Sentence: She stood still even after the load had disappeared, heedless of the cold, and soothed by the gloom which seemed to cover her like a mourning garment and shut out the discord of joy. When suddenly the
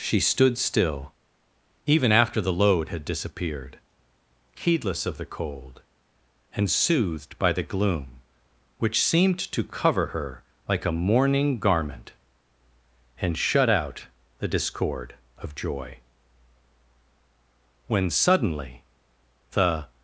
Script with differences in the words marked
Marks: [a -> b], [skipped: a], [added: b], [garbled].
She stood still even after the load had disappeared, heedless of the cold, and soothed by the gloom which seemed to cover her like a mourning garment and shut out the discord of joy. When suddenly the